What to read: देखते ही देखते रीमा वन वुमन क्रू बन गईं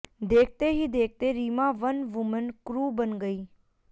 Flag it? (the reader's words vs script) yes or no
no